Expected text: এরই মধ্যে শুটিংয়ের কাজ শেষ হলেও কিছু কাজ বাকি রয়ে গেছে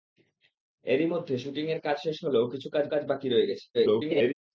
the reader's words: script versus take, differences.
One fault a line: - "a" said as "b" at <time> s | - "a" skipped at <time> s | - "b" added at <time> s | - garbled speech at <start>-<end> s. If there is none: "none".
- "কাজ" added at 2.9 s
- garbled speech at 3.7-4.3 s